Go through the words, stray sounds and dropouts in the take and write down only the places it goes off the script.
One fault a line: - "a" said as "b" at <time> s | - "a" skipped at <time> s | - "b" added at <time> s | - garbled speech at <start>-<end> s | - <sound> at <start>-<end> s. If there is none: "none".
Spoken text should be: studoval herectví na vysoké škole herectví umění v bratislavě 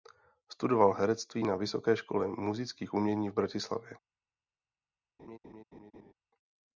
- "herectví" said as "múzických" at 2.3 s
- laugh at 5.2-6.1 s